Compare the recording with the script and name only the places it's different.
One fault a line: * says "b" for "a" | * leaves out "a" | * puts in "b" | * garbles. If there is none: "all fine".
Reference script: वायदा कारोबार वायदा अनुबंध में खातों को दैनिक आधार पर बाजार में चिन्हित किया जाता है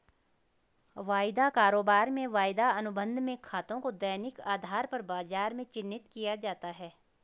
* puts in "में"